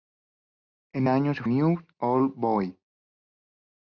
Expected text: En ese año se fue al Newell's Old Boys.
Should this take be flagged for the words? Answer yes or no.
yes